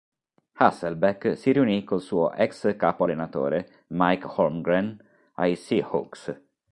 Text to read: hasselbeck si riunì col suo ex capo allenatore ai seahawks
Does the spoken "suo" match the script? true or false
true